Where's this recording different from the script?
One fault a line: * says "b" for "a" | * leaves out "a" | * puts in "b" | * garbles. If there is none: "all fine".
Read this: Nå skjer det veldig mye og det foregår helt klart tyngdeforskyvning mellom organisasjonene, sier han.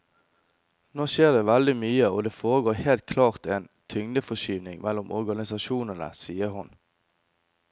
* puts in "en"
* says "hun" for "han"